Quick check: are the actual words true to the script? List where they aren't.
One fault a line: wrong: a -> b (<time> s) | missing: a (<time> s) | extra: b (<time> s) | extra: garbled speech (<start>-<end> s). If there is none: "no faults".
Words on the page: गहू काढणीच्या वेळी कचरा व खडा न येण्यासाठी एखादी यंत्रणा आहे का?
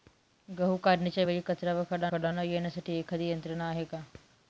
extra: खडा (2.1 s)